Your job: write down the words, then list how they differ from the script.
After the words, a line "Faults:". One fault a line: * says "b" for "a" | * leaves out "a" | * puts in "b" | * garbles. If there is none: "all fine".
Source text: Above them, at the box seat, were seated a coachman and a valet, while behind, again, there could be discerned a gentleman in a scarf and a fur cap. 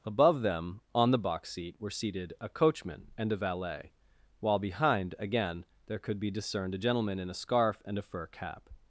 Above them, on the box seat, were seated a coachman and a valet, while behind, again, there could be discerned a gentleman in a scarf and a fur cap.
Faults:
* says "on" for "at"